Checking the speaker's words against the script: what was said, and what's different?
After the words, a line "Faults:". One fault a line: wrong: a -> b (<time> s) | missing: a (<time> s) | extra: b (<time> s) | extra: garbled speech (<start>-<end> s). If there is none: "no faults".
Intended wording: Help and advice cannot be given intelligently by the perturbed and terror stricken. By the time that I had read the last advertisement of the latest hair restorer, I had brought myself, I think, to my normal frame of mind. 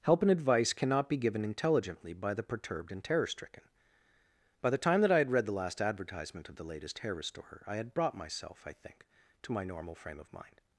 Help and advice cannot be given intelligently by the perturbed and terror stricken. By the time that I had read the last advertisement of the latest hair restorer, I had brought myself, I think, to my normal frame of mind.
Faults:
no faults